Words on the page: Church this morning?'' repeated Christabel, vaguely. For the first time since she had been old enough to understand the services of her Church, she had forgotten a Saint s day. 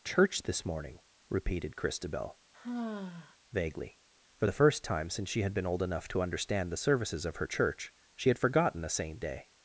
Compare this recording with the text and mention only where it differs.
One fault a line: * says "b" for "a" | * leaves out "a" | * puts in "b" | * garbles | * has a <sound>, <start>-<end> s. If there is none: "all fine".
* has a sigh, 2.5-3.4 s
* leaves out "s"